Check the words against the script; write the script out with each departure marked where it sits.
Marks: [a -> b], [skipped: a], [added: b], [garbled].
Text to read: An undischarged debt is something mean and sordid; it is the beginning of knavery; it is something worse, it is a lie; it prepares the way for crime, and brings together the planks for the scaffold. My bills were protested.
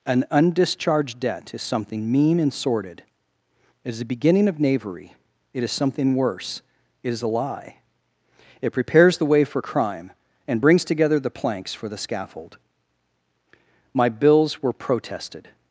An undischarged debt is something mean and sordid; it is the beginning of knavery; it is something worse, it is a lie; it prepares the way for crime, and brings together the planks for the scaffold. My bills were protested.